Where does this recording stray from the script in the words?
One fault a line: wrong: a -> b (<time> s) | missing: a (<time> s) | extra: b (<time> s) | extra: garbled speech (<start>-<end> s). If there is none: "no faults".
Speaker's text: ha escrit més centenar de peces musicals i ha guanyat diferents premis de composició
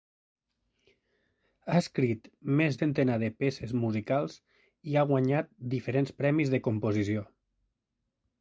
no faults